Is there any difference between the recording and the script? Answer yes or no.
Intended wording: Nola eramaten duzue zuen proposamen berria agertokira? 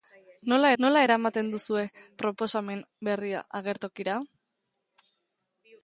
yes